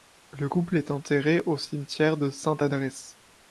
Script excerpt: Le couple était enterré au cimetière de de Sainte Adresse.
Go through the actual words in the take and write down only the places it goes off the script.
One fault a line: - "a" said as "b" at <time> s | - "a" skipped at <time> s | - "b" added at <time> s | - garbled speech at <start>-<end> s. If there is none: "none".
- "était" said as "est" at 0.8 s
- "de" skipped at 2.3 s